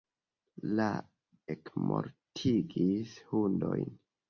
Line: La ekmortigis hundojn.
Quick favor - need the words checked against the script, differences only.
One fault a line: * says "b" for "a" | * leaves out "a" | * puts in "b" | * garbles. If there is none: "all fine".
all fine